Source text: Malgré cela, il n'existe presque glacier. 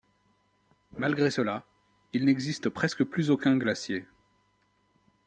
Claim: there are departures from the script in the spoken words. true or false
true